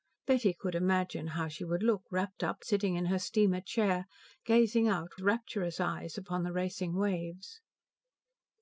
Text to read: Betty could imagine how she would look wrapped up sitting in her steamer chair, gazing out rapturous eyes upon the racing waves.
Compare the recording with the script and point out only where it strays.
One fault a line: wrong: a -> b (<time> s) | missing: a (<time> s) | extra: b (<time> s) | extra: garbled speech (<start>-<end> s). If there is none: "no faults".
no faults